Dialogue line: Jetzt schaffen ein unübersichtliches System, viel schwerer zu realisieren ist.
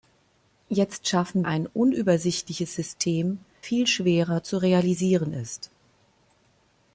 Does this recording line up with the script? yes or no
yes